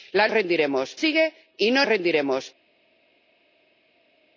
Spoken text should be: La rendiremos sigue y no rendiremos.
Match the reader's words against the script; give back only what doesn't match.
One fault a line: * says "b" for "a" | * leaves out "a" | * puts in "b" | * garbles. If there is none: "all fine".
all fine